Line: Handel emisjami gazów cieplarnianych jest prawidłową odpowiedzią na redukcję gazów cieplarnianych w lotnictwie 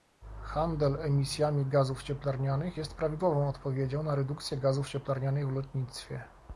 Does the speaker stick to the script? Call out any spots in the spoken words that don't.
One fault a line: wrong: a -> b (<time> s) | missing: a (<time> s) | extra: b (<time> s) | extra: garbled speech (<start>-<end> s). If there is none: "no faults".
no faults